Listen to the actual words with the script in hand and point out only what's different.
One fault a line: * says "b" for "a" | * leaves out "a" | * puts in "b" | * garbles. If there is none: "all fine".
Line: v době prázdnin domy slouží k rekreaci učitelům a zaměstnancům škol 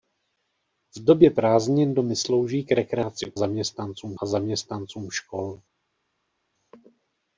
* says "zaměstnancům" for "učitelům"